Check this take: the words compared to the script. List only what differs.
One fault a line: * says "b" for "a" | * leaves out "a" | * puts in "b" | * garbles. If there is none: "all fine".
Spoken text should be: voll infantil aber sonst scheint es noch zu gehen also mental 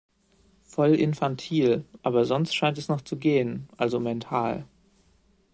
all fine